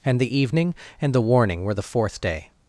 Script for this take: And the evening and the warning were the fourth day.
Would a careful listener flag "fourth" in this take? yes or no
no